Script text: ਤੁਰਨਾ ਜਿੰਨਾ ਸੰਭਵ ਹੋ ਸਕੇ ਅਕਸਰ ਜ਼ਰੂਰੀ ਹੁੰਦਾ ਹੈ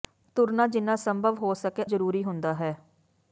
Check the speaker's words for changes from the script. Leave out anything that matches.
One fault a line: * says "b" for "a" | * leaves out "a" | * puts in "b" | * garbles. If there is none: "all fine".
* leaves out "ਅਕਸਰ"